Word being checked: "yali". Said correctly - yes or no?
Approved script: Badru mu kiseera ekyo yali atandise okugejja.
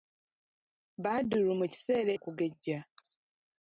no